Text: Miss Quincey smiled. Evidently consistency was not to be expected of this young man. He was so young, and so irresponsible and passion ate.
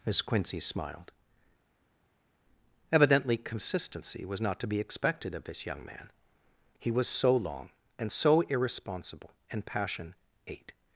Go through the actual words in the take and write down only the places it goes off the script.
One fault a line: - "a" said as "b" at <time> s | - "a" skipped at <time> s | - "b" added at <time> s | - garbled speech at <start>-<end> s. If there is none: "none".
- "young" said as "long" at 7.3 s